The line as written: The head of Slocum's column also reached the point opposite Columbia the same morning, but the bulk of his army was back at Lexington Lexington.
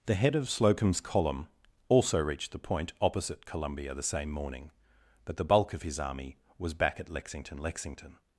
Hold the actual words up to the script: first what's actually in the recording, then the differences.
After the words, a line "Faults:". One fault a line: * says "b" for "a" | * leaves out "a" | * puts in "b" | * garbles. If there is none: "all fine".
The head of Slocum's column also reached the point opposite Columbia the same morning, but the bulk of his army was back at Lexington Lexington.
Faults:
all fine